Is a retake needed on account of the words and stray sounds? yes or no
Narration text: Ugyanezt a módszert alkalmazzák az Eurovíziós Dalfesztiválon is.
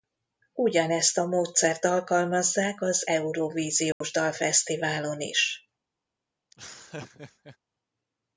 yes